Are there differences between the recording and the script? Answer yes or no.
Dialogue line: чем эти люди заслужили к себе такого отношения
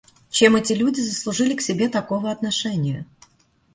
no